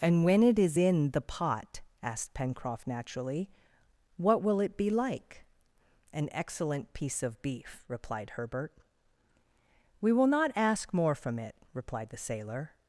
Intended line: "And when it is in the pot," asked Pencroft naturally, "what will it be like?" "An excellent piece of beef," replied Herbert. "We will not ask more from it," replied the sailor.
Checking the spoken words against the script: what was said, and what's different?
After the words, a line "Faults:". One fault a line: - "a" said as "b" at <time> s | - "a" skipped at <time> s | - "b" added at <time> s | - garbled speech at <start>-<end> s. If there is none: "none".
"And when it is in the pot," asked Pencroft naturally, "what will it be like?" "An excellent piece of beef," replied Herbert. "We will not ask more from it," replied the sailor.
Faults:
none